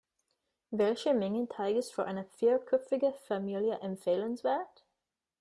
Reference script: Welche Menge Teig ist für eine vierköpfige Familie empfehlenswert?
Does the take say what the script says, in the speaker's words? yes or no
yes